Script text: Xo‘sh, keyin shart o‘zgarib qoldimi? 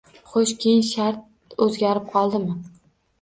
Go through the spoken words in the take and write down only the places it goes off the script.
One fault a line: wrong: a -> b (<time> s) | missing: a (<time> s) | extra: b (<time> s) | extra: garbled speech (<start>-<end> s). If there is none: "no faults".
no faults